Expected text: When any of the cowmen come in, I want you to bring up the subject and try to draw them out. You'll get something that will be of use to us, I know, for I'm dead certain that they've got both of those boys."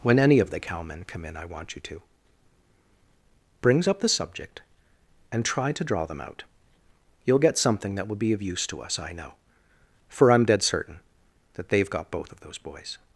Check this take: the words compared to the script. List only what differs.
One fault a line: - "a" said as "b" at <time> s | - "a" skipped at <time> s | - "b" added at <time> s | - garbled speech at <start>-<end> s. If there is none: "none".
- "bring" said as "brings" at 3.6 s